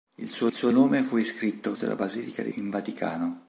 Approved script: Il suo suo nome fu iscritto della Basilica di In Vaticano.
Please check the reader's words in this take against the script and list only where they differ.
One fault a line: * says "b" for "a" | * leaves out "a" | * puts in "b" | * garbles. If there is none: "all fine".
all fine